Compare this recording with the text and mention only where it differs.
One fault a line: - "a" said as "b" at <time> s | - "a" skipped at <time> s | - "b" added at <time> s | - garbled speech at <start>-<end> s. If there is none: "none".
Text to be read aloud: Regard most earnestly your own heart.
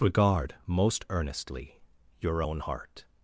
none